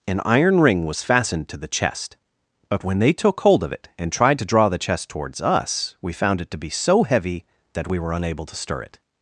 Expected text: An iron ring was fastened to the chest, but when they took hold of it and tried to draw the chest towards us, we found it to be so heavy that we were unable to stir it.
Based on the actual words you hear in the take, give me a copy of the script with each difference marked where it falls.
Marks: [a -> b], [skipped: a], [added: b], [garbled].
An iron ring was fastened to the chest, but when they took hold of it and tried to draw the chest towards us, we found it to be so heavy that we were unable to stir it.